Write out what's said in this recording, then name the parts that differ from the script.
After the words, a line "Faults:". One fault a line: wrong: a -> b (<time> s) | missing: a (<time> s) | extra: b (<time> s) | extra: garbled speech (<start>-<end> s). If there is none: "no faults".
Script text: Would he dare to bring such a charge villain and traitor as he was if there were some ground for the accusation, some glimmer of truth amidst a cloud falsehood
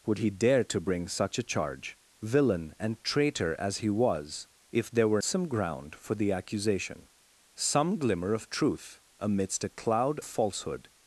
Would he dare to bring such a charge villain and traitor as he was if there were some ground for the accusation, some glimmer of truth amidst a cloud falsehood
Faults:
no faults